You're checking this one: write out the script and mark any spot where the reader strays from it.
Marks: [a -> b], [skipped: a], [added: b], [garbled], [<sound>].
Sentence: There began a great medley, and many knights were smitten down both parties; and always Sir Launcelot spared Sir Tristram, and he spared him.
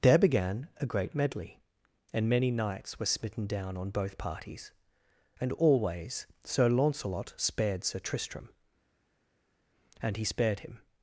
There began a great medley, and many knights were smitten down [added: on] both parties; and always Sir Launcelot spared Sir Tristram, and he spared him.